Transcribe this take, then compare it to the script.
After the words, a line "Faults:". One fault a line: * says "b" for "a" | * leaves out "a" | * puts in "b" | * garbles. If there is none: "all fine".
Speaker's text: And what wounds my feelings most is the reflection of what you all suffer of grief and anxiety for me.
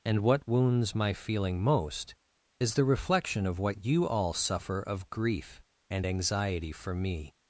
And what wounds my feeling most is the reflection of what you all suffer of grief and anxiety for me.
Faults:
* says "feeling" for "feelings"